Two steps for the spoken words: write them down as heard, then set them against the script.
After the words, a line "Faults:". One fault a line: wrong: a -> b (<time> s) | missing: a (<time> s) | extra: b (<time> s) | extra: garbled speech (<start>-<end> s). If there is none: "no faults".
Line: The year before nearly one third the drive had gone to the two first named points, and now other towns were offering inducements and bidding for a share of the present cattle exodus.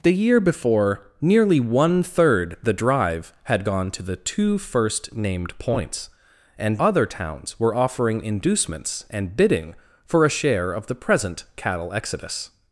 The year before nearly one third the drive had gone to the two first named points, and other towns were offering inducements and bidding for a share of the present cattle exodus.
Faults:
missing: now (6.8 s)